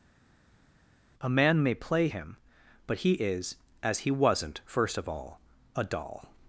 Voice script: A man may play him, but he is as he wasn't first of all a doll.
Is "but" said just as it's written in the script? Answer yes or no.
yes